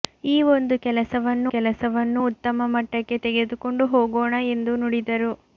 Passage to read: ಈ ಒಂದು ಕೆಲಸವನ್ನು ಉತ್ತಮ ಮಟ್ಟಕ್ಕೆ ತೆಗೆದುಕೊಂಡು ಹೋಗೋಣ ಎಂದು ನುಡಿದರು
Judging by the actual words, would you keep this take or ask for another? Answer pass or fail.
fail